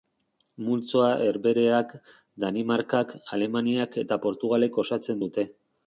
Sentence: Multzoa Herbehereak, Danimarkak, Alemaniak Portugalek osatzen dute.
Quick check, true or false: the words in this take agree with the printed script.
false